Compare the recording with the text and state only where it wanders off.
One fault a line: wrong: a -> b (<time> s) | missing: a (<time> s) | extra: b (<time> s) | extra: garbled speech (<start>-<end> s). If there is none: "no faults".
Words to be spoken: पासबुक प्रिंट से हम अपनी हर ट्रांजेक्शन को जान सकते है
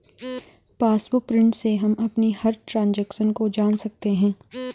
no faults